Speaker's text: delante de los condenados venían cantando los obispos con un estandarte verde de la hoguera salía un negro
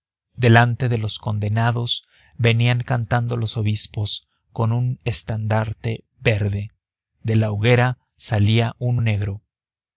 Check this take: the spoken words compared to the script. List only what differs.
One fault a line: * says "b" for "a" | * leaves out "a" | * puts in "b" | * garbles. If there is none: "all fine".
all fine